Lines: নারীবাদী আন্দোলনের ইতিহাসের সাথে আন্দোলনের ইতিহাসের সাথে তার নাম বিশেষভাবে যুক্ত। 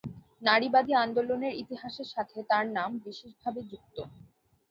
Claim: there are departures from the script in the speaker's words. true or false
true